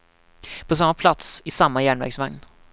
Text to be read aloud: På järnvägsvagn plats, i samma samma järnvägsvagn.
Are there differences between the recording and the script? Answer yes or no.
yes